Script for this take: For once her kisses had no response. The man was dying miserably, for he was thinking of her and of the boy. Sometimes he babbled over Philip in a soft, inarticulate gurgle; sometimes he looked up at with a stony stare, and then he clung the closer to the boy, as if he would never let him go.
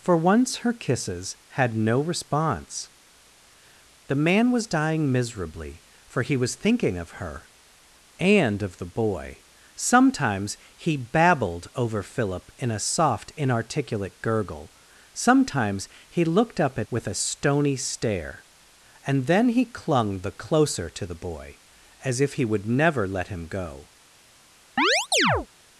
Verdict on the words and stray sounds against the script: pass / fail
fail